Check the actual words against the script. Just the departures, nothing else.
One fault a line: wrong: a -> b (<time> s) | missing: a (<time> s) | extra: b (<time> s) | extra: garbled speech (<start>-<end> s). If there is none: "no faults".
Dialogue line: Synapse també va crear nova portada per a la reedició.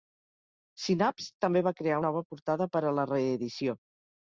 no faults